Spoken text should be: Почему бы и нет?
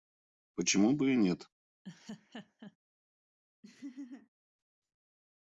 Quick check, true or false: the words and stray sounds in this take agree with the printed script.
false